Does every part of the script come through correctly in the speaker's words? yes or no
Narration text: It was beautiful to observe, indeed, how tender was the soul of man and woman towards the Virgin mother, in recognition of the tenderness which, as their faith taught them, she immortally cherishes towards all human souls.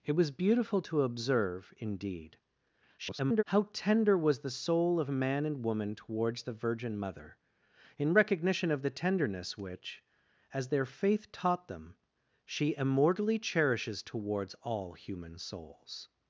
no